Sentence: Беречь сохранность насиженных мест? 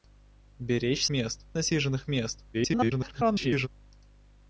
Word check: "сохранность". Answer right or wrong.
wrong